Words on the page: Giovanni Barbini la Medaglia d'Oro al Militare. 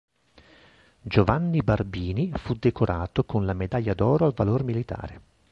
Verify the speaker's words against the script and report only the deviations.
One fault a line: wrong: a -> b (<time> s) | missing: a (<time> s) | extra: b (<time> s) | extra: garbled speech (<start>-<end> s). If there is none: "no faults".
extra: fu decorato con (2.4 s)
extra: Valor (4.3 s)